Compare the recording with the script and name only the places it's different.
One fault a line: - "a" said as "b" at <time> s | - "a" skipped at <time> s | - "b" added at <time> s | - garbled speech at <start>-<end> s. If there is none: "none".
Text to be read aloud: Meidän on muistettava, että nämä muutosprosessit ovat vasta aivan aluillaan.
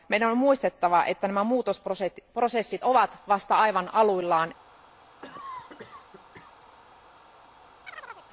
none